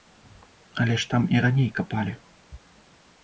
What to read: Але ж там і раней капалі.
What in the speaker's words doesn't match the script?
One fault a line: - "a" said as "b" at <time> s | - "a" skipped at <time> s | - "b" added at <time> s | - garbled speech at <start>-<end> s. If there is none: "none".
none